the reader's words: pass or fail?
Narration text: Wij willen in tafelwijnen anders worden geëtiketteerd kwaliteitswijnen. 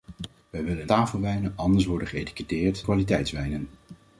pass